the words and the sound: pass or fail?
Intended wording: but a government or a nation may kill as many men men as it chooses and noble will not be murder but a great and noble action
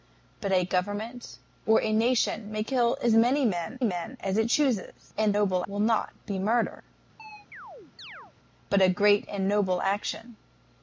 fail